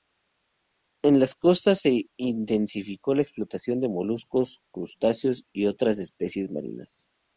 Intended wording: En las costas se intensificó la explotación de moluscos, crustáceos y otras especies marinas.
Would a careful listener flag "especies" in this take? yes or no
no